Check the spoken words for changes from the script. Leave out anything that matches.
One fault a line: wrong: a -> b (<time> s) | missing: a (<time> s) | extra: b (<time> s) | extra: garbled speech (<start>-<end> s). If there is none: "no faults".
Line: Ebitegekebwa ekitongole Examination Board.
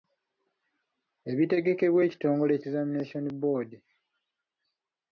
no faults